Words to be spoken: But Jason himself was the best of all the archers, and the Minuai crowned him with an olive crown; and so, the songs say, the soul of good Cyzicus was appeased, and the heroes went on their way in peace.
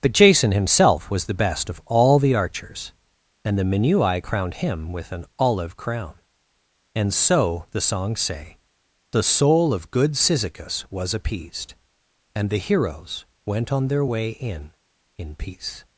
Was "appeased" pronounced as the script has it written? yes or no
yes